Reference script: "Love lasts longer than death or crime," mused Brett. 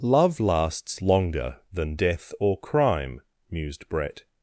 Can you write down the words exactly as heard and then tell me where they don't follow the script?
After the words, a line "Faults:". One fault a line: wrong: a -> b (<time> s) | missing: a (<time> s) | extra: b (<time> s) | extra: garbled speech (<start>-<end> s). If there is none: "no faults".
"Love lasts longer than death or crime," mused Brett.
Faults:
no faults